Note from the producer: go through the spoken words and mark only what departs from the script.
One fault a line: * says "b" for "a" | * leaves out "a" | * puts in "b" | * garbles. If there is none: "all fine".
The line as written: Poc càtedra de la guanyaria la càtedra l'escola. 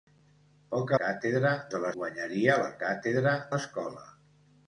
all fine